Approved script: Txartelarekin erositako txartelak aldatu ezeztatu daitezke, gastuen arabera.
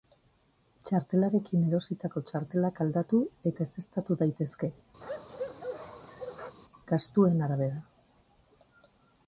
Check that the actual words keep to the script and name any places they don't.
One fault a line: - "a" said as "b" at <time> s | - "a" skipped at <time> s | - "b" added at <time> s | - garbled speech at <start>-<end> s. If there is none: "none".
- "eta" added at 3.5 s